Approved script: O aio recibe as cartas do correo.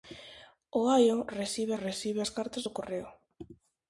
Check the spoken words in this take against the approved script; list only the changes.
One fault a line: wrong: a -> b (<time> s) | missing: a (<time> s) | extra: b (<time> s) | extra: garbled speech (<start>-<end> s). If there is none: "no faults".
extra: recibe (1.9 s)